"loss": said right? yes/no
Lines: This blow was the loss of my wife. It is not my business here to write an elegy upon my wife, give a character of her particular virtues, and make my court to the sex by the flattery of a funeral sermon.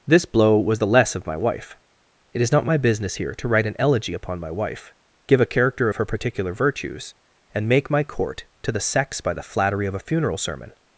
no